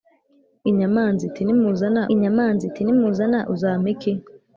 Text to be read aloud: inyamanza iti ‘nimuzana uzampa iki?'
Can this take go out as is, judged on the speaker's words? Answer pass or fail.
fail